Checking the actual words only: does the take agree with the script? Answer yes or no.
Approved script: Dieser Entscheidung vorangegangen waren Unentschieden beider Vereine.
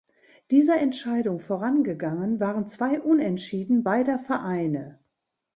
no